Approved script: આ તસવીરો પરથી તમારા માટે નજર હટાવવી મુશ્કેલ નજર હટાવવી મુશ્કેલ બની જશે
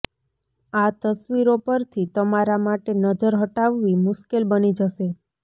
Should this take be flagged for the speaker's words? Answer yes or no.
yes